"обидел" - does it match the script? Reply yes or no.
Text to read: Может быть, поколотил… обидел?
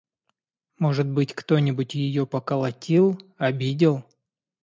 yes